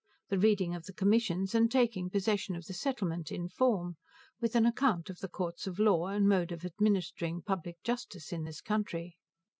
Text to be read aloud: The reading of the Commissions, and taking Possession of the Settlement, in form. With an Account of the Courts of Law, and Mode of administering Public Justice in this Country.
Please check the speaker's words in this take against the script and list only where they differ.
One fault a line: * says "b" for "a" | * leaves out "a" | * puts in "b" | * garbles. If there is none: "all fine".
all fine